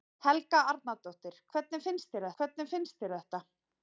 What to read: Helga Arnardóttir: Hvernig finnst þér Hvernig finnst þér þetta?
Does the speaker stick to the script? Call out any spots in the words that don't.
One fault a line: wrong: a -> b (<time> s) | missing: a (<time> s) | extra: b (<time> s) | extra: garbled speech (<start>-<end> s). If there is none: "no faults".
no faults